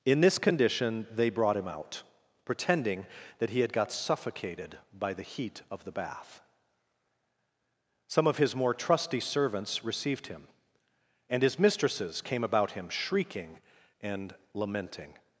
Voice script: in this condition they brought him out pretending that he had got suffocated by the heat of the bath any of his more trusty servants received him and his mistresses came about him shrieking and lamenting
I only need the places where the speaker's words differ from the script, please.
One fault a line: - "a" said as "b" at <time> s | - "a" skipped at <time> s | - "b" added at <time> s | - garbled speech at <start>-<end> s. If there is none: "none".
- "any" said as "some" at 8.1 s